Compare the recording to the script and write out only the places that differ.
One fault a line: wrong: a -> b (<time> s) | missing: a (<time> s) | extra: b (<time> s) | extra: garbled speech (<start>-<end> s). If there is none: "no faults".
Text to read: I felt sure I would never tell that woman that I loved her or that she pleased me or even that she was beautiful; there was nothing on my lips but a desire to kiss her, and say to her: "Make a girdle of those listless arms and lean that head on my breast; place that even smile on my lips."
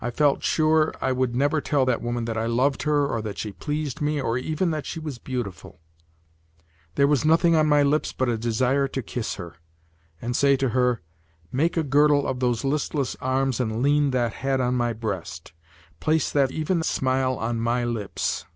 no faults